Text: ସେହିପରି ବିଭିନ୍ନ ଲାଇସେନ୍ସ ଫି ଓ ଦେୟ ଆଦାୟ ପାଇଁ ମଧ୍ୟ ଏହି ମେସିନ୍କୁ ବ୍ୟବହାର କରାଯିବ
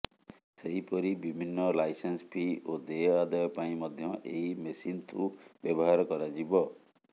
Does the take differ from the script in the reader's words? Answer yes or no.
no